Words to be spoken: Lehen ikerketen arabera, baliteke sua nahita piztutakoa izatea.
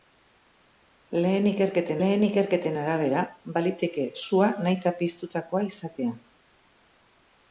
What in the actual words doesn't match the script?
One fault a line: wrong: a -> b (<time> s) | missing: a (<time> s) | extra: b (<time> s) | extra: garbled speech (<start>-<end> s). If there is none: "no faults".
extra: lehen ikerketen (2.0 s)